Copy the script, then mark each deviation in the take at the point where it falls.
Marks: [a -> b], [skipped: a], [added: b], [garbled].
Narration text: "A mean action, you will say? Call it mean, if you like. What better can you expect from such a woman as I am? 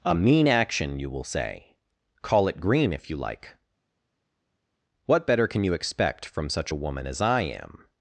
"A mean action, you will say? Call it [mean, -> green] if you like. What better can you expect from such a woman as I am?